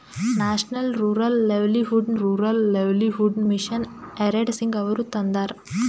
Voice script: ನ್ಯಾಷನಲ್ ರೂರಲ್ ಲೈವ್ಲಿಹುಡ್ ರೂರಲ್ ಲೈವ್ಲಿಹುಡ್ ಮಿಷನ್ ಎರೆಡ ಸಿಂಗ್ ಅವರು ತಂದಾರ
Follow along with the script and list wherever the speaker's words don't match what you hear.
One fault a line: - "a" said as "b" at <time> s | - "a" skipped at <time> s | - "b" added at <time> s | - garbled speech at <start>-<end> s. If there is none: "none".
none